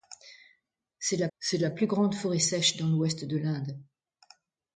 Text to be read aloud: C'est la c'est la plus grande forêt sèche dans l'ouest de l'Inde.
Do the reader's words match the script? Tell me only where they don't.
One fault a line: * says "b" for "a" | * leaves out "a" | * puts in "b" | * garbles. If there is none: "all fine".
all fine